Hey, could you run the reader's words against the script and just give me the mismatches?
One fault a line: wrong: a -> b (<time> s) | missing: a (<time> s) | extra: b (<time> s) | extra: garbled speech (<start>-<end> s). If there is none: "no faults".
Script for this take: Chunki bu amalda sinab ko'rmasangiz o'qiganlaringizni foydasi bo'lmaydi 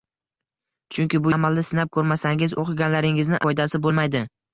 no faults